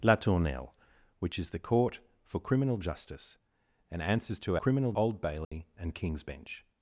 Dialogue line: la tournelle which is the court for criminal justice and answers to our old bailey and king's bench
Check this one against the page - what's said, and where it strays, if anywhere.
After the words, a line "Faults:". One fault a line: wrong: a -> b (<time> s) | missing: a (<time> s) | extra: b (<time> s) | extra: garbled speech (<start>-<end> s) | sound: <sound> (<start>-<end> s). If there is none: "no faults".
la tournelle which is the court for criminal justice and answers to criminal old bailey and king's bench
Faults:
wrong: our -> criminal (4.6 s)
sound: dropout (5.4-5.5 s)